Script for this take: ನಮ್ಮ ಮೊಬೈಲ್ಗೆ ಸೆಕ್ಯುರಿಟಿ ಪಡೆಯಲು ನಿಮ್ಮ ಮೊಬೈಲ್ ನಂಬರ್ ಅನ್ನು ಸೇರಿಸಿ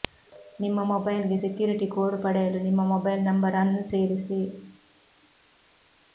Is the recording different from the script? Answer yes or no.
yes